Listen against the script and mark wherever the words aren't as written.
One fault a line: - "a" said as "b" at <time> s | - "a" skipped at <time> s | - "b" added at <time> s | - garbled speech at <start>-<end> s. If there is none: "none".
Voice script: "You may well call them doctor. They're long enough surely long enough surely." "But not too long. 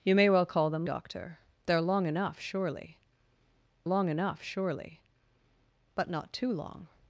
none